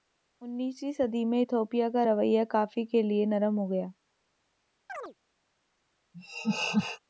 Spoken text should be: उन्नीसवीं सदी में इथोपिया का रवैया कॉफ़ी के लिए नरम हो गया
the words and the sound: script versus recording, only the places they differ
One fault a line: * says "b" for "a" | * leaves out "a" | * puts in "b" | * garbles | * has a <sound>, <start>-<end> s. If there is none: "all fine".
* has a chirp, 4.9-5.1 s
* has a laugh, 6.1-7.0 s